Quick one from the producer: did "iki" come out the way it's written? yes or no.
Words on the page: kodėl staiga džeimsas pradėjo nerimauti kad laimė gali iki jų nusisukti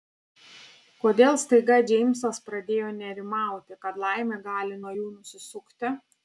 no